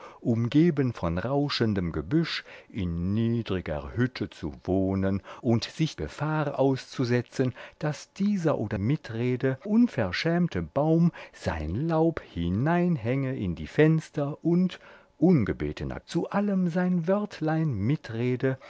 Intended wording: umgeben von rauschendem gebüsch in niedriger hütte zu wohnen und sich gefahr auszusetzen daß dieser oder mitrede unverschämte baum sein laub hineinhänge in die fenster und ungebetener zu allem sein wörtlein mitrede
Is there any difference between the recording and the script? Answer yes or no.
no